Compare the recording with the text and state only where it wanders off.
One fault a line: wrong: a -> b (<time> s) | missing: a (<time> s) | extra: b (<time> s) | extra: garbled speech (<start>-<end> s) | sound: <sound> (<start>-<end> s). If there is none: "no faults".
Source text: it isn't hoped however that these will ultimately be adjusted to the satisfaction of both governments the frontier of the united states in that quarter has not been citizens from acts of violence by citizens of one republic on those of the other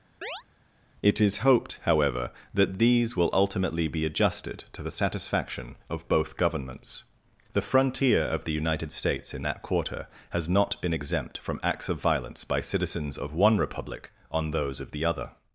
sound: chirp (0.2-0.4 s)
wrong: isn't -> is (1.2 s)
wrong: citizens -> exempt (10.9 s)